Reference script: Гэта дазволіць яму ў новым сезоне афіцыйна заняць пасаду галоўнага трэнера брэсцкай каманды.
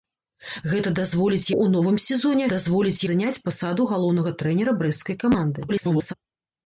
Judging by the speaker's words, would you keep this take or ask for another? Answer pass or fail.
fail